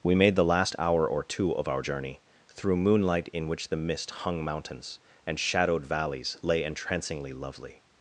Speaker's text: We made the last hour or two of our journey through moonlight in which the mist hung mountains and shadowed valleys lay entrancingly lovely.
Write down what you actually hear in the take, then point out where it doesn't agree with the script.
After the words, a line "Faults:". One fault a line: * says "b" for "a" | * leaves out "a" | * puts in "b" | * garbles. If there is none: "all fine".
We made the last hour or two of our journey through moonlight in which the mist hung mountains and shadowed valleys lay entrancingly lovely.
Faults:
all fine